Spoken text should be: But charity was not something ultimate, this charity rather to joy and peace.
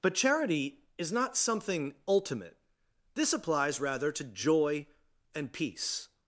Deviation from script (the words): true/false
true